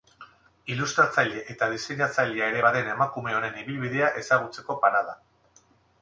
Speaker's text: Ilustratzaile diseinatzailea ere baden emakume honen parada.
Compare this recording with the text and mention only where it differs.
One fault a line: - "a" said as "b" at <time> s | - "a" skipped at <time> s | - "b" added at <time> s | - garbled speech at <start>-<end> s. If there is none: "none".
- "eta" added at 1.5 s
- "ibilbidea ezagutzeko" added at 3.6 s